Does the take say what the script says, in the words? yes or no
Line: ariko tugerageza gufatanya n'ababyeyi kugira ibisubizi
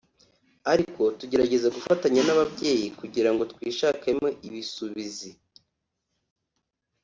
no